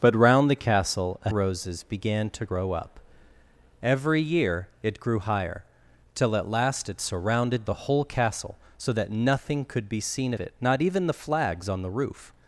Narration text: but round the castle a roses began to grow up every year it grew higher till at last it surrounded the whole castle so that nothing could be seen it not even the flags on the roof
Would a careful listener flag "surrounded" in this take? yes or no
no